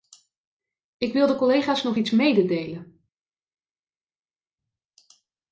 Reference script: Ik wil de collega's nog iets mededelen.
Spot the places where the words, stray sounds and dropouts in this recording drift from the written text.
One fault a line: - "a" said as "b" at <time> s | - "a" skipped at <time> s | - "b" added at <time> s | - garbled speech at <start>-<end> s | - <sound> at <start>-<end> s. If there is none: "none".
none